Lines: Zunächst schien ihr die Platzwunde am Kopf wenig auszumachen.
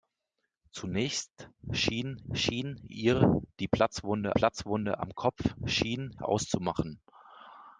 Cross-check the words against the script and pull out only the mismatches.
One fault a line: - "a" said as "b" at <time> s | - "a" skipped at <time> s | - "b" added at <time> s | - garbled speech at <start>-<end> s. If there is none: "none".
- "schien" added at 2.3 s
- "Platzwunde" added at 4.3 s
- "wenig" said as "schien" at 5.6 s